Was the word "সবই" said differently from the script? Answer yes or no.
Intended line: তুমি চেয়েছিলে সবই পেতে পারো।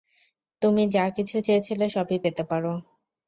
no